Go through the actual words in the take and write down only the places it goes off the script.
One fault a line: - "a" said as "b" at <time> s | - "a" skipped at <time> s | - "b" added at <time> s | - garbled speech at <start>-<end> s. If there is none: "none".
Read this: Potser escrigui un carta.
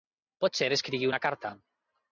- "un" said as "una" at 1.1 s